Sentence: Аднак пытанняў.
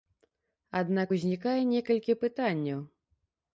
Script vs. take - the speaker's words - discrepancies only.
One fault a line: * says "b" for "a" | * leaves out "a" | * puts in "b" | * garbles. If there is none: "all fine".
* puts in "узнікае некалькі"